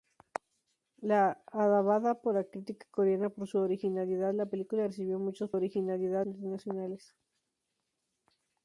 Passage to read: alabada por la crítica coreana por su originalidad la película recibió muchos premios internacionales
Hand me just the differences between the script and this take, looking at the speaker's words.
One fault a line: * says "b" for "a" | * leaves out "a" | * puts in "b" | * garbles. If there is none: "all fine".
* says "originalidad" for "premios"